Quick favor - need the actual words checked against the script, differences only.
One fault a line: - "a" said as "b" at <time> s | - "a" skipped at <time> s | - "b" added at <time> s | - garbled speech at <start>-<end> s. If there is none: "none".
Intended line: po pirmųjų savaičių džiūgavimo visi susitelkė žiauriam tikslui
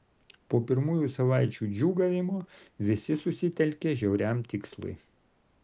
none